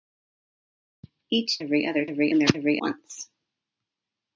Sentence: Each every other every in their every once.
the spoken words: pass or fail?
pass